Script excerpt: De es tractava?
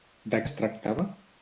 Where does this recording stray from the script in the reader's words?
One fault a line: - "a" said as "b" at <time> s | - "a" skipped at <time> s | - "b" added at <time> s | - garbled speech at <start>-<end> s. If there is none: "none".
none